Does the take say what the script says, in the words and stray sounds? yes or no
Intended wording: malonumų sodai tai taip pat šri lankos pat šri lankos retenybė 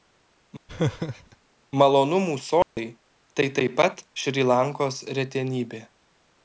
no